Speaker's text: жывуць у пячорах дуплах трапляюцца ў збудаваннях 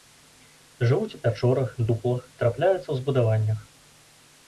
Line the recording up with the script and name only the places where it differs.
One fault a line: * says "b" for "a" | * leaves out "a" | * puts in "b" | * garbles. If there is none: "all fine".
all fine